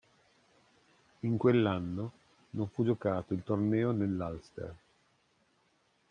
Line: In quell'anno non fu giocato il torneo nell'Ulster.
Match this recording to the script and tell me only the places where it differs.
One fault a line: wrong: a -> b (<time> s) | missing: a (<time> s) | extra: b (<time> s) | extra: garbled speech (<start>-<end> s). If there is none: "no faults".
no faults